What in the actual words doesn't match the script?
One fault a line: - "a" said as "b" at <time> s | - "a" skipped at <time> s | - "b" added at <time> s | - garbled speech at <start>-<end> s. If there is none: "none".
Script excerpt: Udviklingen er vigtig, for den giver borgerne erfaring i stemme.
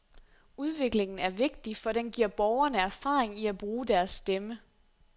- "at bruge deres" added at 3.5 s